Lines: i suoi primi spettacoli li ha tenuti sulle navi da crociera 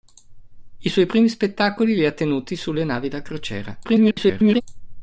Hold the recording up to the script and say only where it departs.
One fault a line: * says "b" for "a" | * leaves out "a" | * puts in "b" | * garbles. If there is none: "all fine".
* garbles